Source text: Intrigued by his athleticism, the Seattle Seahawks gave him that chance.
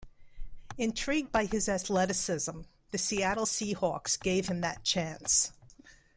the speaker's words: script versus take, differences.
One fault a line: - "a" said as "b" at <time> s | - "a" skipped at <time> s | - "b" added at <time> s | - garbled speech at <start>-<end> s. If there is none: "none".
none